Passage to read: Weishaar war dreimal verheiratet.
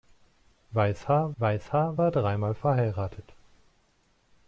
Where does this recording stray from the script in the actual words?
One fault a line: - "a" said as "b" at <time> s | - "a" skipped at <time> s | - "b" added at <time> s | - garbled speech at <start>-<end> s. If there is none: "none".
- "weishaar" added at 1.4 s